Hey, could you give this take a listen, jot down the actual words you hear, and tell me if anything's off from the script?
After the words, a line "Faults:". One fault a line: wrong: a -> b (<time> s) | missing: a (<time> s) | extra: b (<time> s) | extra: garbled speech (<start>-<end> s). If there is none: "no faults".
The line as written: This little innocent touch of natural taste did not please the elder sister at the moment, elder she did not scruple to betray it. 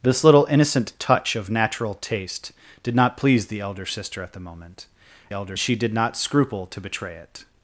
This little innocent touch of natural taste did not please the elder sister at the moment, elder she did not scruple to betray it.
Faults:
no faults